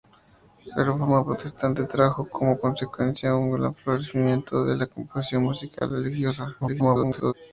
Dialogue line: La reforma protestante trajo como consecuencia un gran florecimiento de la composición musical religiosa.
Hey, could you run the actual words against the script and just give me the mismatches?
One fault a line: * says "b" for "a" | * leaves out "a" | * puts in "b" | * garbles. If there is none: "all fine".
* garbles